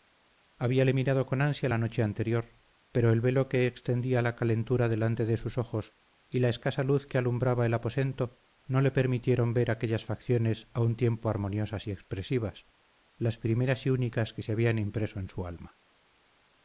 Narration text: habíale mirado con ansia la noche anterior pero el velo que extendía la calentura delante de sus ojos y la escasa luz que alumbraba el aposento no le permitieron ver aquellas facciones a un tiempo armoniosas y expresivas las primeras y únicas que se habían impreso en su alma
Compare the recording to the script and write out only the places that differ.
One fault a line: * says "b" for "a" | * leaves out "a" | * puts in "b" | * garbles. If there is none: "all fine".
all fine